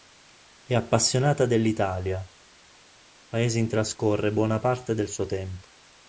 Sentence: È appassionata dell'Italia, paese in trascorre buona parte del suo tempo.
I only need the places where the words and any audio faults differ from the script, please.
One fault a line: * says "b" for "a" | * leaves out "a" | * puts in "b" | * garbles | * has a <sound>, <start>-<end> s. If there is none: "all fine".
all fine